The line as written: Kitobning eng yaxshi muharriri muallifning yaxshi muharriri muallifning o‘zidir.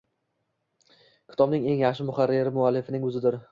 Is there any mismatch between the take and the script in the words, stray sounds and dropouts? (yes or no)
yes